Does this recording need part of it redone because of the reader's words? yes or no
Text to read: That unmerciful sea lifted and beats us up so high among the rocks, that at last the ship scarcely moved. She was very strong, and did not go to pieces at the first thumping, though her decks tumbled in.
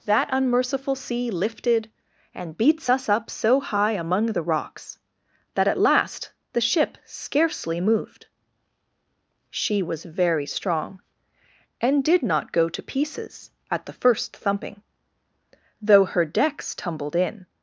no